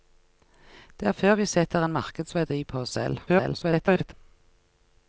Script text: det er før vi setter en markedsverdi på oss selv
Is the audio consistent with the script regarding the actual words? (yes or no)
no